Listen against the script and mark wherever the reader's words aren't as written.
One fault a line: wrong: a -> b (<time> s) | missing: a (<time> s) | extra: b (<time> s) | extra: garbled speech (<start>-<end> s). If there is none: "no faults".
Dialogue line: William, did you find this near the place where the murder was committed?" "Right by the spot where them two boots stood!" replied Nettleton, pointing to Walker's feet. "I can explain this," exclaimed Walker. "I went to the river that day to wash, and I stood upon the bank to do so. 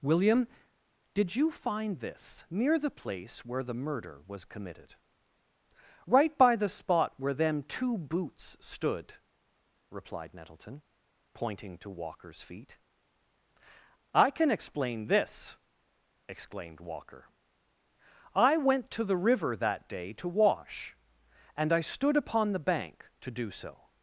no faults